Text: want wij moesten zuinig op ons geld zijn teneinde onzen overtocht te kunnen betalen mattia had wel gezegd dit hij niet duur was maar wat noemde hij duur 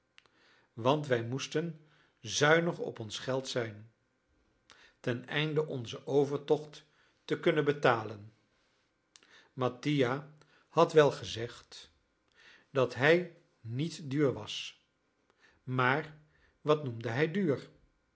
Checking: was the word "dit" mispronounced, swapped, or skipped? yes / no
yes